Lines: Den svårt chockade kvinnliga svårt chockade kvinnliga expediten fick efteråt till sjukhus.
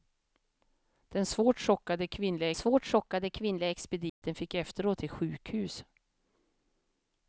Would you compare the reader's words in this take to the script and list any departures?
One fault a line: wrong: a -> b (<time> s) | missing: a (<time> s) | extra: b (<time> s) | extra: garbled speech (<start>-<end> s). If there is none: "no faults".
no faults